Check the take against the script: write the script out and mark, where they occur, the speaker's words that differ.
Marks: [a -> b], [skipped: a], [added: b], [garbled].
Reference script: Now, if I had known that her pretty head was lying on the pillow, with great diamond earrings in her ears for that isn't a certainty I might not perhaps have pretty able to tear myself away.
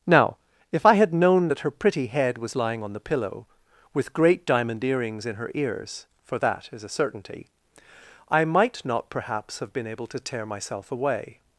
Now, if I had known that her pretty head was lying on the pillow, with great diamond earrings in her ears for that [isn't -> is] a certainty I might not perhaps have [pretty -> been] able to tear myself away.